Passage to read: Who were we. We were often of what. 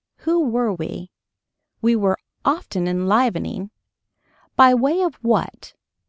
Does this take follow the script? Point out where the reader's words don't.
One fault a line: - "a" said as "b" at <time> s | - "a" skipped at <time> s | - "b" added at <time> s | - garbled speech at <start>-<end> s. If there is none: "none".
- "enlivening By way" added at 2.9 s